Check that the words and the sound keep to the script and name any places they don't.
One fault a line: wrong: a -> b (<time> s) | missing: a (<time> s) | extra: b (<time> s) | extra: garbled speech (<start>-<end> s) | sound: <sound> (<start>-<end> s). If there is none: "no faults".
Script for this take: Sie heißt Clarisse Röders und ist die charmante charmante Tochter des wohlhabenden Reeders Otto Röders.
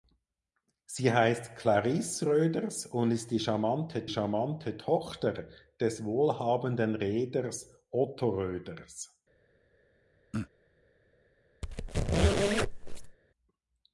sound: throat clearing (10.3-10.5 s)
sound: squeak (11.6-13.2 s)